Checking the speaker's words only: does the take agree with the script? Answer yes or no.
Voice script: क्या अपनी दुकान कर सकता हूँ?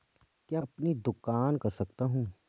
yes